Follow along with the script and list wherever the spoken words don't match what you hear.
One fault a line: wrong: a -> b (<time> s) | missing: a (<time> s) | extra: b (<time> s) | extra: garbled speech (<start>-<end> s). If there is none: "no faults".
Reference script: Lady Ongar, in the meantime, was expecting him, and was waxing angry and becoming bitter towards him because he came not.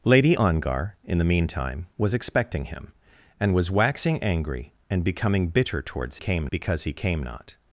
wrong: him -> came (6.1 s)